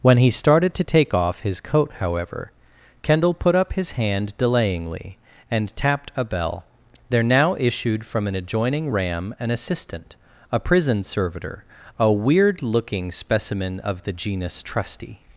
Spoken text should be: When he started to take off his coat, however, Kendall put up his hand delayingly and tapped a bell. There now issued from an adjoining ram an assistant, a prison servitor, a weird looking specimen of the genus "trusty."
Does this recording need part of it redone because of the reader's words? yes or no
no